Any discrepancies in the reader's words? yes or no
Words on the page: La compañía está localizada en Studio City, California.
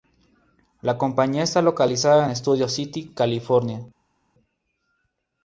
no